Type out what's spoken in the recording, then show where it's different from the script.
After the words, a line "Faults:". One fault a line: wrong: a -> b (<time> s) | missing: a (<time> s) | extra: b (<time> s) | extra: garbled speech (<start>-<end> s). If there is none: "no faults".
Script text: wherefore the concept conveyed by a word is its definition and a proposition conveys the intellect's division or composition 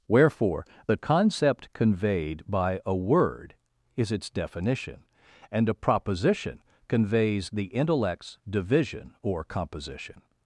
wherefore the concept conveyed by a word is its definition and a proposition conveys the intellect's division or composition
Faults:
no faults